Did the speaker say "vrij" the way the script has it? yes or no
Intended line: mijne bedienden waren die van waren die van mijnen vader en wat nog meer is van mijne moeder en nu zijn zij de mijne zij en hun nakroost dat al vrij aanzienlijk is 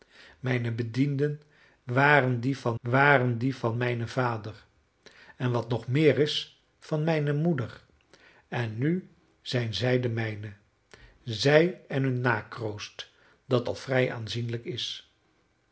yes